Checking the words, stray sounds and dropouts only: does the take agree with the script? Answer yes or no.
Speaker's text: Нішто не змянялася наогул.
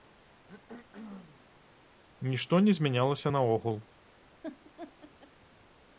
no